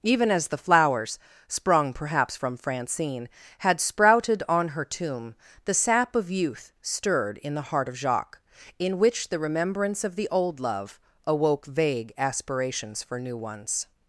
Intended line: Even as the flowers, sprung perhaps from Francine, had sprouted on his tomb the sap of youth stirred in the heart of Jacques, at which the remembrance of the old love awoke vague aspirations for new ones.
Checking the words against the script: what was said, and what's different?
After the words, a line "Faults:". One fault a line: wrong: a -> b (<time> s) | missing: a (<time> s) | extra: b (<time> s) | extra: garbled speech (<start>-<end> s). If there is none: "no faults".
Even as the flowers, sprung perhaps from Francine, had sprouted on her tomb the sap of youth stirred in the heart of Jacques, in which the remembrance of the old love awoke vague aspirations for new ones.
Faults:
wrong: his -> her (4.7 s)
wrong: at -> in (8.8 s)